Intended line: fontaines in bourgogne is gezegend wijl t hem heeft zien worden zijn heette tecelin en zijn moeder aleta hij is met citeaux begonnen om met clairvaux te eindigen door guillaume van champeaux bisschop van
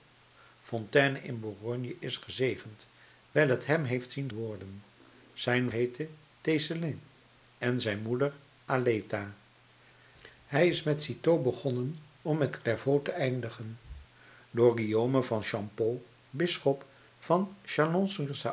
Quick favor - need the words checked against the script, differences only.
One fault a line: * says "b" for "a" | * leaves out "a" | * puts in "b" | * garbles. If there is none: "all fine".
all fine